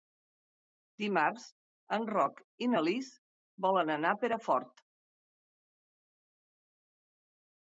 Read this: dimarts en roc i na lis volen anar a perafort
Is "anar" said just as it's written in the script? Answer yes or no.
yes